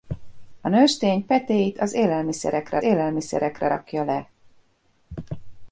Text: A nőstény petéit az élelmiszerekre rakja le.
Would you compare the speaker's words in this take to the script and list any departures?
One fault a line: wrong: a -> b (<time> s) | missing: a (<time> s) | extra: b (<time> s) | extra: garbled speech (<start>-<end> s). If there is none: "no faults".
extra: élelmiszerekre (2.8 s)